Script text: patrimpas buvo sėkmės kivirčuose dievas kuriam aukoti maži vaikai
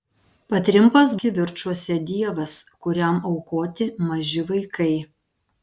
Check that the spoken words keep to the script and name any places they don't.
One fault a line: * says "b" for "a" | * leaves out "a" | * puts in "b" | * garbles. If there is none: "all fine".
* leaves out "buvo sėkmės"